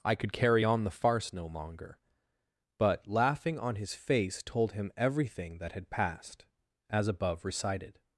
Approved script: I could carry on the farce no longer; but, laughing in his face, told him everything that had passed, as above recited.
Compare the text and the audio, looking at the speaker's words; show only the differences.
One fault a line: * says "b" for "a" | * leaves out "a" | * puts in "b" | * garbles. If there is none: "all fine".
* says "on" for "in"